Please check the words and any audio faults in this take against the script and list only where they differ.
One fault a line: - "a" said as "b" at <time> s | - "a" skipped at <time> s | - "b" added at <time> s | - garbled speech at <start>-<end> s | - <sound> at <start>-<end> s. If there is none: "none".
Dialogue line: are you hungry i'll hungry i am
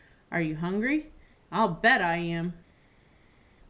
- "hungry" said as "bet" at 1.8 s